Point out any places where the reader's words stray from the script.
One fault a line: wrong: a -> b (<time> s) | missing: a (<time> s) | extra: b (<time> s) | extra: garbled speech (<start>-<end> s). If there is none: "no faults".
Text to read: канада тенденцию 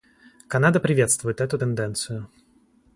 extra: приветствует эту (0.8 s)